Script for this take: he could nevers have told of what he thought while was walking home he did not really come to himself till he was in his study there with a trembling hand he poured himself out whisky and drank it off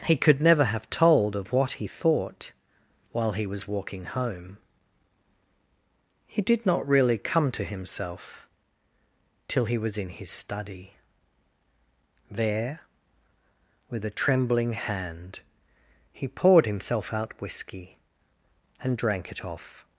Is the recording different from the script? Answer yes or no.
yes